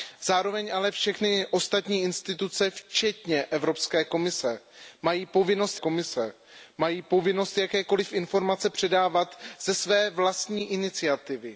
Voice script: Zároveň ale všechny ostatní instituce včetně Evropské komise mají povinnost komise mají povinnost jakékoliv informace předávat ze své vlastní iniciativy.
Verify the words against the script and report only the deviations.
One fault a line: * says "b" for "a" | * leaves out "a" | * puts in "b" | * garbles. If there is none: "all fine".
all fine